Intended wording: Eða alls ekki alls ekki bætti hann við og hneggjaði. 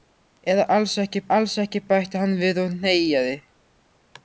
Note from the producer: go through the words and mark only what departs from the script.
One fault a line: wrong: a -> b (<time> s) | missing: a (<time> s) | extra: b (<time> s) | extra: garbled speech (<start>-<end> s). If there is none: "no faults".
no faults